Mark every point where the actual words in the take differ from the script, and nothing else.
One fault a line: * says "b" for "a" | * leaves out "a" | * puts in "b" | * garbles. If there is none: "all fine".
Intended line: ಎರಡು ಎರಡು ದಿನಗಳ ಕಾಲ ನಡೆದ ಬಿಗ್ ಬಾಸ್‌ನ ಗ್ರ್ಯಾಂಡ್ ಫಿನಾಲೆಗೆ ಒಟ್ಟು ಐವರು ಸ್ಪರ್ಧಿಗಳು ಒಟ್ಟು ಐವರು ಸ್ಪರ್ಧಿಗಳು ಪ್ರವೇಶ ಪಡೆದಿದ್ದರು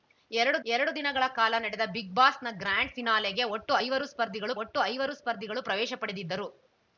all fine